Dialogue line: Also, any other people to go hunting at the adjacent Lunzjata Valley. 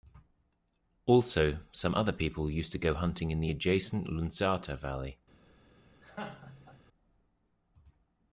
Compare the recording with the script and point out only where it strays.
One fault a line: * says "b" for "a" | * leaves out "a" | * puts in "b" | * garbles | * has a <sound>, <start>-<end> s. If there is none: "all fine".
* says "some" for "any"
* puts in "used"
* says "in" for "at"
* has a laugh, 6.0-6.8 s